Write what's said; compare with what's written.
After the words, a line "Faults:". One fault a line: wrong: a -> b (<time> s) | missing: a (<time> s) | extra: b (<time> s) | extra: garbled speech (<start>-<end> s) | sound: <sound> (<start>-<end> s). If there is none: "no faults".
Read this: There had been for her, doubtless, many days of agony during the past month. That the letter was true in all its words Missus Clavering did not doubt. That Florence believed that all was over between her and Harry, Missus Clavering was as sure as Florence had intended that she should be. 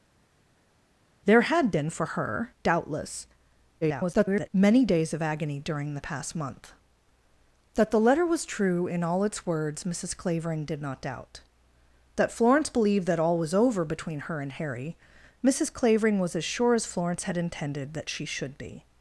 There had been for her, doubtless, [garbled] many days of agony during the past month. That the letter was true in all its words Missus Clavering did not doubt. That Florence believed that all was over between her and Harry, Missus Clavering was as sure as Florence had intended that she should be.
Faults:
extra: garbled speech (3.8-4.5 s)